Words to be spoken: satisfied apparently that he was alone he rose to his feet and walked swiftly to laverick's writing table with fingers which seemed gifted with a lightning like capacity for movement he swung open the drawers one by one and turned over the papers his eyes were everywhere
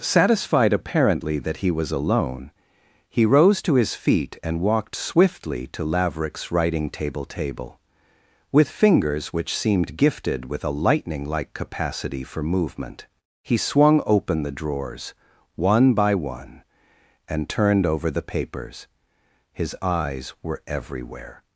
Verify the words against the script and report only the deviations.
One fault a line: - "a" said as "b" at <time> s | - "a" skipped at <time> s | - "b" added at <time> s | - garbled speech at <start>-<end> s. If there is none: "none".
- "table" added at 7.2 s